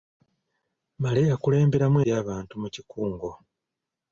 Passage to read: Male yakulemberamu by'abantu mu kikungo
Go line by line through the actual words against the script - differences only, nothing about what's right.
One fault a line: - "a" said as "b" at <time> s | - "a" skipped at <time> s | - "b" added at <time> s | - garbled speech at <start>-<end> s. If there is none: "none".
none